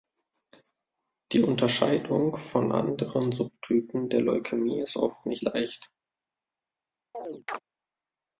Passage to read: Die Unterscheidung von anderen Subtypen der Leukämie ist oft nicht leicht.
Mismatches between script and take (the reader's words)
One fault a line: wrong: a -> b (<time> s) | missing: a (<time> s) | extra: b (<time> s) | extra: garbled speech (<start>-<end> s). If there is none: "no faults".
no faults